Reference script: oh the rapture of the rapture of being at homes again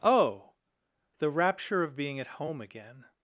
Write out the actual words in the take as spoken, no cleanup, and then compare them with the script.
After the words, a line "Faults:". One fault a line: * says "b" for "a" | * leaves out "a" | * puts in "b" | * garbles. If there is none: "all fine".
oh the rapture of being at home again
Faults:
* leaves out "the rapture of"
* says "home" for "homes"